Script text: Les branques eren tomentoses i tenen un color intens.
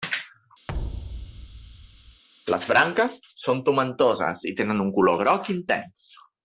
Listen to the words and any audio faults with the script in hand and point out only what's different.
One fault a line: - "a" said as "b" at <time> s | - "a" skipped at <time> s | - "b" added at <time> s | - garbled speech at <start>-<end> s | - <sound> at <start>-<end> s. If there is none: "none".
- thud at 0.7-2.2 s
- "eren" said as "són" at 3.4 s
- "groc" added at 5.2 s